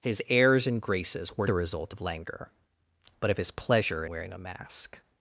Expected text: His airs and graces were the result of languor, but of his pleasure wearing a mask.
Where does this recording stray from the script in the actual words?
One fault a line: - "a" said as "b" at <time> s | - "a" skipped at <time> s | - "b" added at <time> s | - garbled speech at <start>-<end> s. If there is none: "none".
none